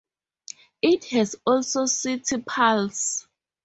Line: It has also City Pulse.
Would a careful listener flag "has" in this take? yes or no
no